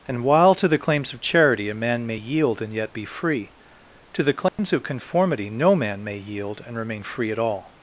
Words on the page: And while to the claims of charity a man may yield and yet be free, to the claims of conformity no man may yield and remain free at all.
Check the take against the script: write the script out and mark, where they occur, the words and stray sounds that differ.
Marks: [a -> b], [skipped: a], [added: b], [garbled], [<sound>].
And while to the claims of charity a man may yield and yet be free, to the claims [dropout] of conformity no man may yield and remain free at all.